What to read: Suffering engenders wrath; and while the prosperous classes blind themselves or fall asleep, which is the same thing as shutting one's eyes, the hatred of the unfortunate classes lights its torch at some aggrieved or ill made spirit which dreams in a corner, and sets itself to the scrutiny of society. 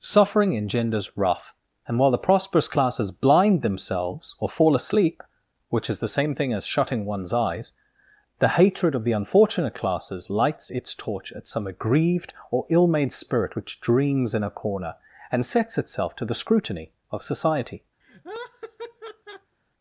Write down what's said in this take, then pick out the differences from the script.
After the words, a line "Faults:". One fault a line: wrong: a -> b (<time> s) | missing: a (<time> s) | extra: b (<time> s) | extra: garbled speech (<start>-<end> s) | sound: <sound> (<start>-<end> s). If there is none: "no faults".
Suffering engenders wrath; and while the prosperous classes blind themselves or fall asleep, which is the same thing as shutting one's eyes, the hatred of the unfortunate classes lights its torch at some aggrieved or ill made spirit which dreams in a corner, and sets itself to the scrutiny of society.
Faults:
sound: laugh (18.0-19.5 s)